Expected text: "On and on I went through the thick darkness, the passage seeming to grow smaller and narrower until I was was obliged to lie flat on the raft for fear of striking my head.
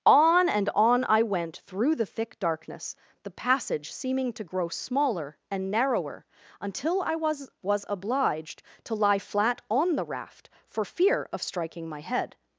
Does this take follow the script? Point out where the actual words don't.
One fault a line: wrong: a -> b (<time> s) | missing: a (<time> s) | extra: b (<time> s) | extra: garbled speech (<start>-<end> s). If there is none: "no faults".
no faults